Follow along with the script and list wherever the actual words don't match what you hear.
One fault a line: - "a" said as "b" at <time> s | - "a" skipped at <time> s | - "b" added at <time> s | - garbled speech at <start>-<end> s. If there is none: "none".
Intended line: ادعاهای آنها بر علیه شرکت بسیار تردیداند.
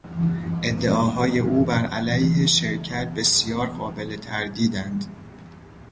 - "آنها" said as "او" at 1.4 s
- "قابل" added at 3.7 s